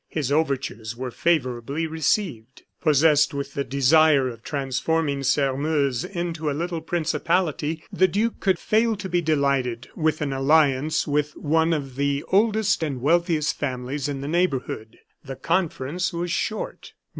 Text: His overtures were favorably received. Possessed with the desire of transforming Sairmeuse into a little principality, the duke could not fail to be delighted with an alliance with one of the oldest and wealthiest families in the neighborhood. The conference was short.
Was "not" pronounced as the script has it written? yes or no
no